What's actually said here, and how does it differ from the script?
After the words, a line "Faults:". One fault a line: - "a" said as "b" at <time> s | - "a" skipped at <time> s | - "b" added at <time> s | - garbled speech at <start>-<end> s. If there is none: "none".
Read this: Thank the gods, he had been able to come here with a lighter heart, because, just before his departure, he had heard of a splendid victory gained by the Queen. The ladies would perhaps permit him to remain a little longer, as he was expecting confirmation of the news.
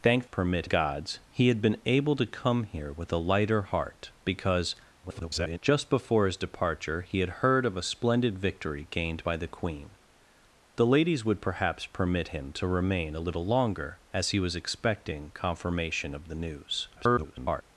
Thank permit gods, he had been able to come here with a lighter heart, because, [garbled] just before his departure, he had heard of a splendid victory gained by the Queen. The ladies would perhaps permit him to remain a little longer, as he was expecting confirmation of the news. [garbled]
Faults:
- "the" said as "permit" at 0.2 s
- garbled speech at 5.0-5.6 s
- garbled speech at 17.0-17.6 s